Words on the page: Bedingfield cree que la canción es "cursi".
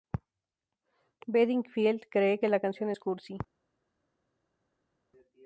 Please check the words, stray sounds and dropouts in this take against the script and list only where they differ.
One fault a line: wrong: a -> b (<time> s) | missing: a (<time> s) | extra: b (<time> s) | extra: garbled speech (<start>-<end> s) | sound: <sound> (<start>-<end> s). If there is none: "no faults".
no faults